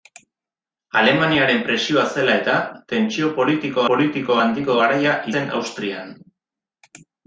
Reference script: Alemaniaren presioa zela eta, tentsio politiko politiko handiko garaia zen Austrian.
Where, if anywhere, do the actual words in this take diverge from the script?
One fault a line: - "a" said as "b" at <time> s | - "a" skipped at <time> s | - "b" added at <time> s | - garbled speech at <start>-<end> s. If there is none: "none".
none